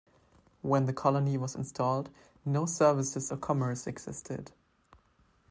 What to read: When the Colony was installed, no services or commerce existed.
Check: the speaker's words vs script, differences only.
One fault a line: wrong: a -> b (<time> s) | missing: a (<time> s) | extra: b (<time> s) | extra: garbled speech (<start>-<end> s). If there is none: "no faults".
no faults